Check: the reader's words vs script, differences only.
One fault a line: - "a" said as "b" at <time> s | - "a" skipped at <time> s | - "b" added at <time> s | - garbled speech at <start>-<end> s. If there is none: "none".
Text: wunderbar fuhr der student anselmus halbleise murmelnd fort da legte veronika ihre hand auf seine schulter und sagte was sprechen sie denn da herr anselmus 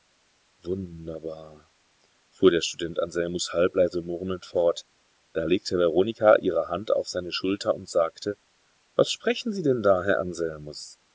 none